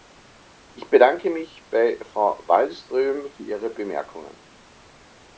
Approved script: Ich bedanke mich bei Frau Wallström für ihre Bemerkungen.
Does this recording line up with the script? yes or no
yes